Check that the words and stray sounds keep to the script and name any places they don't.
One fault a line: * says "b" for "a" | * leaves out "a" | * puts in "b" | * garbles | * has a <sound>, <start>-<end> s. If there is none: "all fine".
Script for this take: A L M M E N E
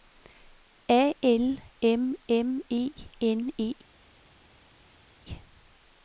all fine